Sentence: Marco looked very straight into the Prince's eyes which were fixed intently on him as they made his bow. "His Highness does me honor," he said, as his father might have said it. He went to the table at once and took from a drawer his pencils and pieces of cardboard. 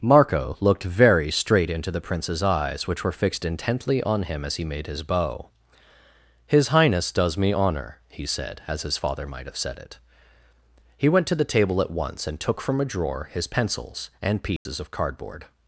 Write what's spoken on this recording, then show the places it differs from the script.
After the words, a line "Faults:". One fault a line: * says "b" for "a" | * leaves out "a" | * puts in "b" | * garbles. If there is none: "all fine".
Marco looked very straight into the Prince's eyes which were fixed intently on him as he made his bow. "His Highness does me honor," he said, as his father might have said it. He went to the table at once and took from a drawer his pencils and pieces of cardboard.
Faults:
* says "he" for "they"